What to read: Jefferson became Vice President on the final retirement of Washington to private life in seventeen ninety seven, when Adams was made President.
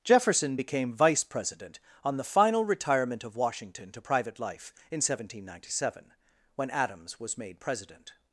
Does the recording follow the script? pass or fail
pass